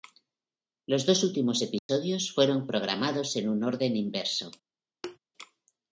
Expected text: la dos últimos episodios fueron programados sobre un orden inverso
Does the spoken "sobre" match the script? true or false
false